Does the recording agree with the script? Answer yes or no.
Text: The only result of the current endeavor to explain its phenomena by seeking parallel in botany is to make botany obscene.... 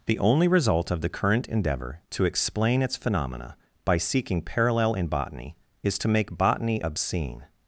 yes